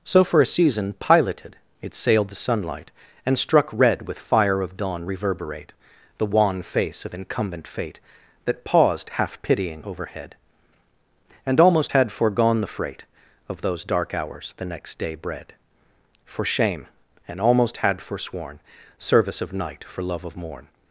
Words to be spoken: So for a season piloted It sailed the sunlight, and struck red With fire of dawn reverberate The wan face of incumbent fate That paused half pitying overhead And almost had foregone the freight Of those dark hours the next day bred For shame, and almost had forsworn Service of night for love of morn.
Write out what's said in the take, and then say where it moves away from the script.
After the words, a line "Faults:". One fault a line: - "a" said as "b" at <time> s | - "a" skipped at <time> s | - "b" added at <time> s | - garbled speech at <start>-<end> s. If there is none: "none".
So for a season piloted It sailed the sunlight, and struck red With fire of dawn reverberate The wan face of incumbent fate That paused half pitying overhead And almost had foregone the freight Of those dark hours the next day bred For shame, and almost had forsworn Service of night for love of morn.
Faults:
none